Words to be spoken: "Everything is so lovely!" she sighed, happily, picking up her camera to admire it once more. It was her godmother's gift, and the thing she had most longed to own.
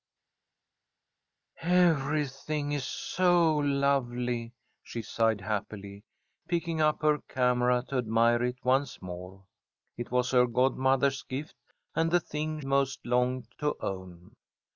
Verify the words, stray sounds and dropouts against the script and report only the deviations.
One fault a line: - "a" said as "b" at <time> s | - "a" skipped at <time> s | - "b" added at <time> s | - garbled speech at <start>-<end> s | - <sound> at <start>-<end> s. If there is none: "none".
- "she had" skipped at 12.6 s